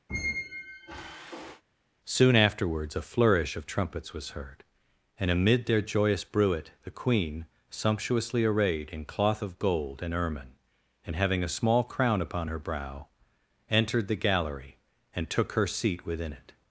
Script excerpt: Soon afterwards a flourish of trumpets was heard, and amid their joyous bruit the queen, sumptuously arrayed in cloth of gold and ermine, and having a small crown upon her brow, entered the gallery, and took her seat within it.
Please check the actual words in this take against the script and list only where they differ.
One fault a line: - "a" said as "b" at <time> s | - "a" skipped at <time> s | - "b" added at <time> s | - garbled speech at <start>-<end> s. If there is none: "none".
none